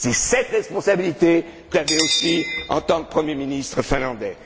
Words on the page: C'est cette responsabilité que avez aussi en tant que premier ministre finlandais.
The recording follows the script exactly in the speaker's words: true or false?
true